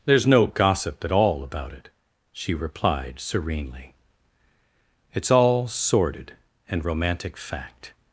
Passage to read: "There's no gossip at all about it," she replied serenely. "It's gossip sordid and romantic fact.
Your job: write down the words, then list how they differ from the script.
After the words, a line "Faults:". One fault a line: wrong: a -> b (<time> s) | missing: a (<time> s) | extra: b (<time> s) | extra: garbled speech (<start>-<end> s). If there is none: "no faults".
"There's no gossip at all about it," she replied serenely. "It's all sordid and romantic fact.
Faults:
wrong: gossip -> all (5.3 s)